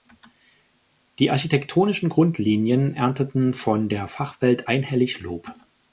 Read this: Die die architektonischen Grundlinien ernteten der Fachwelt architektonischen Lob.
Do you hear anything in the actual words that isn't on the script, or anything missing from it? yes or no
yes